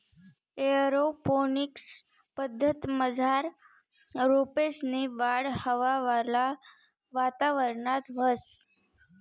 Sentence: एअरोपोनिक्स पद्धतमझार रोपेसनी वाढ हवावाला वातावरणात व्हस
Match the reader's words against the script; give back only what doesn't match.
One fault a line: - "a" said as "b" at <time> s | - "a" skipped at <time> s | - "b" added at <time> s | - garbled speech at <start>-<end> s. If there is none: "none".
none